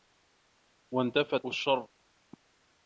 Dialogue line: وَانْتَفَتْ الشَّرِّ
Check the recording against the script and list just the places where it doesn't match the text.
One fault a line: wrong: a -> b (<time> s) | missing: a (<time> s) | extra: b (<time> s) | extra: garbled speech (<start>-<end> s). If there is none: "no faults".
no faults